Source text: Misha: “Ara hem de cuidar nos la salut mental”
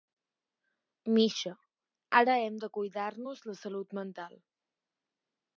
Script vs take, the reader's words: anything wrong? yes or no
no